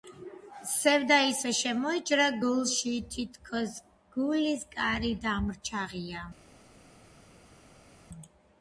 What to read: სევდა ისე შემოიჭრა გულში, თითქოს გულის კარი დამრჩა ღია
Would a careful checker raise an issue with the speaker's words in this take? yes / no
no